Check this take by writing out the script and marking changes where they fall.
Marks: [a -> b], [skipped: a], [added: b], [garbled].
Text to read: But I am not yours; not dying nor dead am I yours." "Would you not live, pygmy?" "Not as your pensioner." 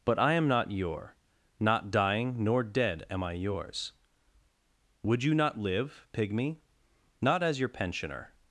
But I am not [yours; -> your] not dying nor dead am I yours." "Would you not live, pygmy?" "Not as your pensioner."